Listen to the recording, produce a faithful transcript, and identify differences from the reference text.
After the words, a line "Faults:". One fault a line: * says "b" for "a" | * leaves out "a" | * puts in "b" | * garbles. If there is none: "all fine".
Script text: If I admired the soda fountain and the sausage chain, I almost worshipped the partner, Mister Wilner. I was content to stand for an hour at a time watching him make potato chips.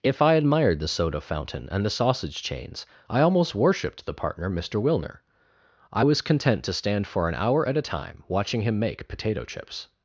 If I admired the soda fountain and the sausage chains, I almost worshipped the partner, Mister Wilner. I was content to stand for an hour at a time watching him make potato chips.
Faults:
* says "chains" for "chain"